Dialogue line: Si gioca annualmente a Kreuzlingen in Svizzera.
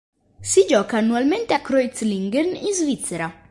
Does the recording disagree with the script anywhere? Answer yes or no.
no